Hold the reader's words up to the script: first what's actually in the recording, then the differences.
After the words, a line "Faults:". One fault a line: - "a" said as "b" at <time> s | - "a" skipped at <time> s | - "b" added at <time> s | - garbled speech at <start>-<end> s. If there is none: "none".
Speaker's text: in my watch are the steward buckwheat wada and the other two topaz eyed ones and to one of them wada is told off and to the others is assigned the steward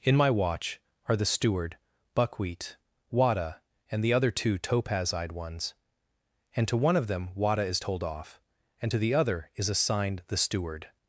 in my watch are the steward buckwheat wada and the other two topaz eyed ones and to one of them wada is told off and to the other is assigned the steward
Faults:
- "others" said as "other" at 9.1 s